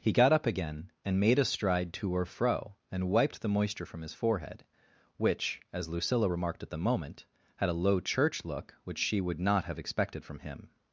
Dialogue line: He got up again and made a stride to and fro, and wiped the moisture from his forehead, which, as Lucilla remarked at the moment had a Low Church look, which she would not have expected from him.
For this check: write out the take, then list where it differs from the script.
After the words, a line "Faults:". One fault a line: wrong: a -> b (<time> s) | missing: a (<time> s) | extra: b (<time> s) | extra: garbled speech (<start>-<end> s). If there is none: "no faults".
He got up again and made a stride to or fro, and wiped the moisture from his forehead, which, as Lucilla remarked at the moment had a Low Church look, which she would not have expected from him.
Faults:
wrong: and -> or (2.1 s)